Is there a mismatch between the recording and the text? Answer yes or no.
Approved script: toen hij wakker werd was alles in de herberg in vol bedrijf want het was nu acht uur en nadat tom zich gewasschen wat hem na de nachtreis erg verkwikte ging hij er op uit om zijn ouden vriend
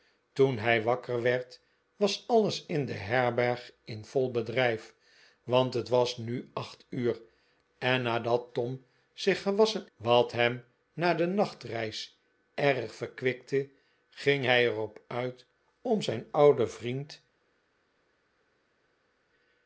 no